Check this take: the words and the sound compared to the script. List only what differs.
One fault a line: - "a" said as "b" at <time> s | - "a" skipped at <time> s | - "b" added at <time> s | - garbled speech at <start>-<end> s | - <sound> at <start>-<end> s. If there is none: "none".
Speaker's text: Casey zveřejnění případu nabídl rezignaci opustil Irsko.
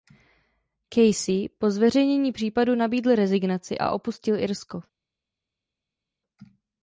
- "po" added at 1.6 s
- "a" added at 3.8 s